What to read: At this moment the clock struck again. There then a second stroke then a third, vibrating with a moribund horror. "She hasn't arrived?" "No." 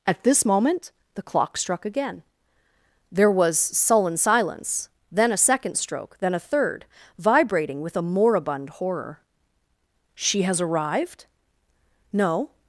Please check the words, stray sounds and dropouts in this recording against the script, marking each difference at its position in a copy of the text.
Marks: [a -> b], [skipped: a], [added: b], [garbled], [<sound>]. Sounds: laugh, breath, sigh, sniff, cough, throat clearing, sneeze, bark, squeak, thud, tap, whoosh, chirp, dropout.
At this moment the clock struck again. There [added: was sullen silence] then a second stroke then a third, vibrating with a moribund horror. "She [hasn't -> has] arrived?" "No."